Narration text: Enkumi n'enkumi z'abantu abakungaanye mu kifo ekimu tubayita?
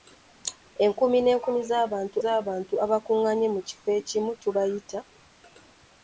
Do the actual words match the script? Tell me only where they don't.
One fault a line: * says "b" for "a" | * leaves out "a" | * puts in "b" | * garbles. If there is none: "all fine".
* puts in "z'abantu"